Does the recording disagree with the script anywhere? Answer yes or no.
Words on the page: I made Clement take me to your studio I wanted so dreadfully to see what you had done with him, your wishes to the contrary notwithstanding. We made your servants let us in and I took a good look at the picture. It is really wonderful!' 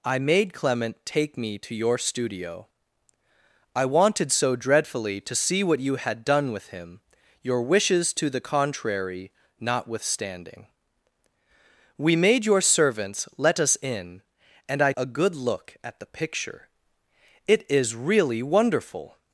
yes